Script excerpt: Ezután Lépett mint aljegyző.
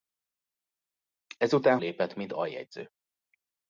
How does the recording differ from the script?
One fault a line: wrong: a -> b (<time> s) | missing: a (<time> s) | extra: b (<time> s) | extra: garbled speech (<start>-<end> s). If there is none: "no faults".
no faults